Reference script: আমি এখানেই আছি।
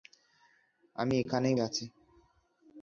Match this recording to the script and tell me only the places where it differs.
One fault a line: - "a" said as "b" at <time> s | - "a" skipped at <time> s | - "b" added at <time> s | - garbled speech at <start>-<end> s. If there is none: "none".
none